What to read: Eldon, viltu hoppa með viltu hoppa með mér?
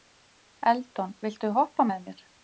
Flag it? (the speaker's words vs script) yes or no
yes